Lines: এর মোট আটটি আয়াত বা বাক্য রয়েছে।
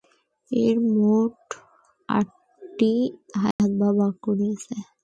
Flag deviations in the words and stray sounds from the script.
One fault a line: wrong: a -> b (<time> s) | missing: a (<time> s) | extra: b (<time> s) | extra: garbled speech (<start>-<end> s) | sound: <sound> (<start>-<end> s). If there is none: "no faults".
sound: dropout (3.5-3.6 s)